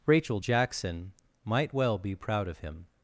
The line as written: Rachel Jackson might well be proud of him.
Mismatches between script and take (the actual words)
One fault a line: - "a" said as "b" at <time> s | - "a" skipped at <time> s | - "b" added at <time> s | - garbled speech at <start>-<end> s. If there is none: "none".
none